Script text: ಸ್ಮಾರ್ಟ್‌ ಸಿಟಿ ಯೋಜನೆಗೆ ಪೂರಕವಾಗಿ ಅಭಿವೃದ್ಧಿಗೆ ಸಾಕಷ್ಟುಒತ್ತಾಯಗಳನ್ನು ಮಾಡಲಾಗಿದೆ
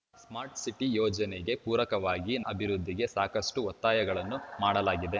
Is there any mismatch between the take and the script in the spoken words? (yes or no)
no